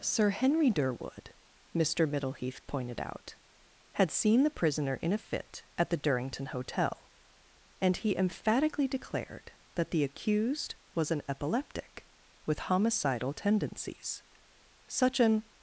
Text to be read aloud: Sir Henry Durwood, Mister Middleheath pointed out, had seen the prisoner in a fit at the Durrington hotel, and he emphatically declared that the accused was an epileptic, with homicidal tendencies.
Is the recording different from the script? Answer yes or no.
yes